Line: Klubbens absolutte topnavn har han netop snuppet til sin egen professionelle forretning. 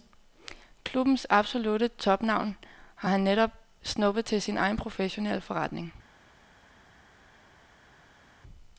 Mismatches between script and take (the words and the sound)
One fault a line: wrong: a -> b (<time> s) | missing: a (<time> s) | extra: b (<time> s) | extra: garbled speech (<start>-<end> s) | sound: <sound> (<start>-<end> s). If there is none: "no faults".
no faults